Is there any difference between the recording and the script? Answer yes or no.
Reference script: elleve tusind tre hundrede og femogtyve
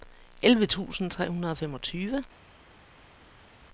no